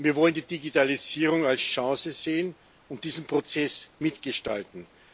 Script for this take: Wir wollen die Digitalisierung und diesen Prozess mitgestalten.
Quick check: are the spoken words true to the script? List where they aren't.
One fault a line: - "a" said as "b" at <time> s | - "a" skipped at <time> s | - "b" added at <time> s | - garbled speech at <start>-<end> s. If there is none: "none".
- "als Chance sehen" added at 1.4 s